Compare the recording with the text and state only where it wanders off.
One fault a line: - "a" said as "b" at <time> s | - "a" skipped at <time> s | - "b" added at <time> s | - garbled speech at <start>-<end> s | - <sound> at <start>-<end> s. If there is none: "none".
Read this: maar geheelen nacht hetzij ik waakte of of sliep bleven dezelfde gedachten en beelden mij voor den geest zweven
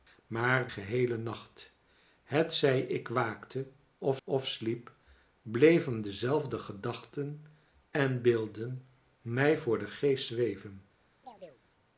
- chirp at 11.2-11.6 s